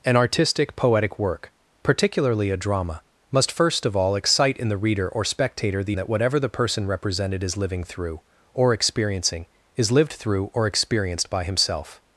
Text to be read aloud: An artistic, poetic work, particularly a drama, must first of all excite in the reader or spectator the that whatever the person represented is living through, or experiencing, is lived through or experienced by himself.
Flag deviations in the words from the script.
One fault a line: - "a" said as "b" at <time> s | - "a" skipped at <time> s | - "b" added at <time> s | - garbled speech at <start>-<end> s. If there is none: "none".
none